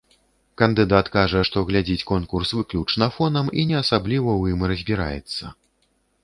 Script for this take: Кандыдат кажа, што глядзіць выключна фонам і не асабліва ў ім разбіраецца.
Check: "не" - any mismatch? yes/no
no